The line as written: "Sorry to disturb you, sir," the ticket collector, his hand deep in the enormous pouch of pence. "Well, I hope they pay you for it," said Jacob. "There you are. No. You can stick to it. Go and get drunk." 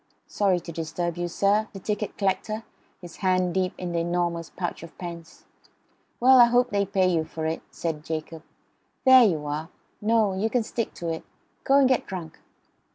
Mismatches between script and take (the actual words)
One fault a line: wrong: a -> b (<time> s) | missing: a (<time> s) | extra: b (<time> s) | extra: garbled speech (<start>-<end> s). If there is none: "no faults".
no faults